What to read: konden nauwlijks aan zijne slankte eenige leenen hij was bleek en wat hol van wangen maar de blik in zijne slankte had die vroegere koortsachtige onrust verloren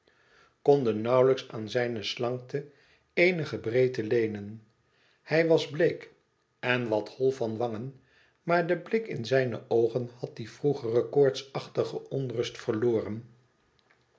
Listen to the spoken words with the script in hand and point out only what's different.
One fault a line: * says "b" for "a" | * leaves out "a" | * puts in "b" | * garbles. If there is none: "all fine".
* puts in "breedte"
* says "oogen" for "slankte"